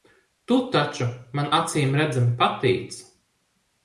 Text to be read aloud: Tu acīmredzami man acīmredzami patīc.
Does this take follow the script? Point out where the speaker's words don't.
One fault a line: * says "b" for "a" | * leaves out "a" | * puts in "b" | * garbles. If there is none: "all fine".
* says "taču" for "acīmredzami"